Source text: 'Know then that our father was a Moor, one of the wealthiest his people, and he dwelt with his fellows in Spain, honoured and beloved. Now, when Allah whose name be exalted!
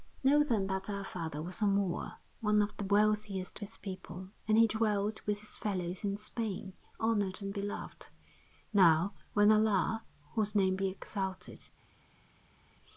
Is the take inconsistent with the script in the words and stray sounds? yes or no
no